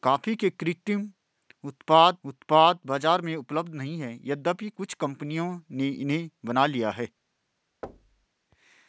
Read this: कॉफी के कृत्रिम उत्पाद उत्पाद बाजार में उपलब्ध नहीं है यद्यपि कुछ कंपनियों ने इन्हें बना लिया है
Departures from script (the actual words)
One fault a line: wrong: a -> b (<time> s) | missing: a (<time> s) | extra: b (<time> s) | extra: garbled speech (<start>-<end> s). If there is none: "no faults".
no faults